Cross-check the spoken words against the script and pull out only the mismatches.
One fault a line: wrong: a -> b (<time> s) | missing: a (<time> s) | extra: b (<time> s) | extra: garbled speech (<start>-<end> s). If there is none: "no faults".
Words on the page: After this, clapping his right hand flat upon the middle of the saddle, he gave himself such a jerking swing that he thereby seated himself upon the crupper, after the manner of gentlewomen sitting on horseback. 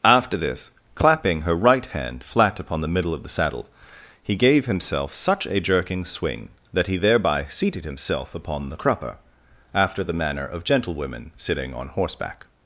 wrong: his -> her (1.4 s)